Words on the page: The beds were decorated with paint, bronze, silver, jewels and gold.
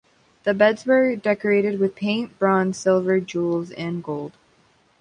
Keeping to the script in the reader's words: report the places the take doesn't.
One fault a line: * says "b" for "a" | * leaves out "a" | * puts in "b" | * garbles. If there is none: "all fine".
all fine